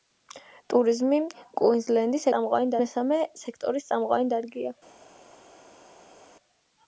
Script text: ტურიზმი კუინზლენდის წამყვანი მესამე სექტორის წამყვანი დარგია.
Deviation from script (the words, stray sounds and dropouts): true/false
false